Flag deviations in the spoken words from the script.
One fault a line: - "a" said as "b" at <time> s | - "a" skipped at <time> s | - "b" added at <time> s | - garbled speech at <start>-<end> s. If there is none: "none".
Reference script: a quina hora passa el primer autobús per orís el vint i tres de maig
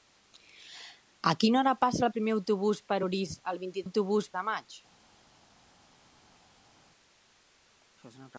- "tres" said as "autobús" at 3.8 s